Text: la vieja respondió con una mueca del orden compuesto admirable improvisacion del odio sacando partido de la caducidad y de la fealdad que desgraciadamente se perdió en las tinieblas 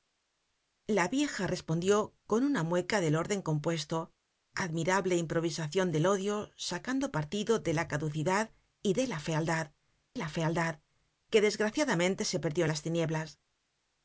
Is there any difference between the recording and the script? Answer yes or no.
yes